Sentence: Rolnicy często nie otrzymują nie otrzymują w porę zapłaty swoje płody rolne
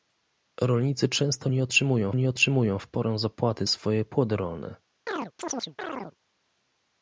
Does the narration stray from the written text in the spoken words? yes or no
no